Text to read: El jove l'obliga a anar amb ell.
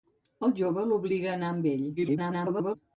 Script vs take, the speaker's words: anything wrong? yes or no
yes